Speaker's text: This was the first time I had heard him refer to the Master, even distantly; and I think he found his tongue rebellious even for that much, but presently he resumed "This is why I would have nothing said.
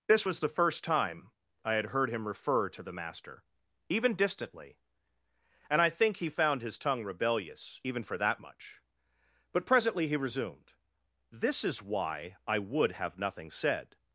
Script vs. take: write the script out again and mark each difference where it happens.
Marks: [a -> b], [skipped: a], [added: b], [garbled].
This was the first time I had heard him refer to the Master, even distantly; and I think he found his tongue rebellious even for that much, but presently he resumed "This is why I would have nothing said.